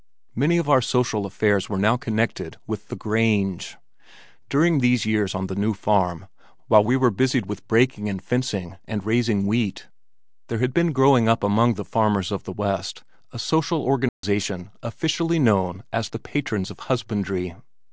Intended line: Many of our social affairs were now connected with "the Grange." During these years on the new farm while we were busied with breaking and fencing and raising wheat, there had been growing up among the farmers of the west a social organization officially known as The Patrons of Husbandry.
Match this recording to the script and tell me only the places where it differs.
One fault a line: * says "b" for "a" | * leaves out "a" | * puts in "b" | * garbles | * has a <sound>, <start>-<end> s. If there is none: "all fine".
* has a dropout, 14.1-14.2 s